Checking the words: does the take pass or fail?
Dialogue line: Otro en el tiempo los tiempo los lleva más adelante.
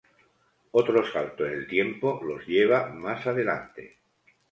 fail